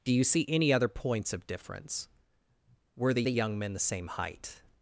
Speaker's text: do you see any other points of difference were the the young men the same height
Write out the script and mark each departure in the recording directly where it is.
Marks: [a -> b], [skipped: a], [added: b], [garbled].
do you see any other points of difference were the the young men the same height